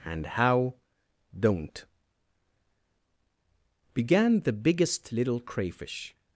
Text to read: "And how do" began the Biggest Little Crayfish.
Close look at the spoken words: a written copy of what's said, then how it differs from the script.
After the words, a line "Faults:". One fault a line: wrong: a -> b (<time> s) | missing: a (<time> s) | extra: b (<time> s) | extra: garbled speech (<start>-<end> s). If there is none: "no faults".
"And how don't" began the Biggest Little Crayfish.
Faults:
wrong: do -> don't (1.4 s)